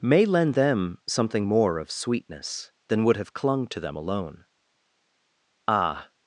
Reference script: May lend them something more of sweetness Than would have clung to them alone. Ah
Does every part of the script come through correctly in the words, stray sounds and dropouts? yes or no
yes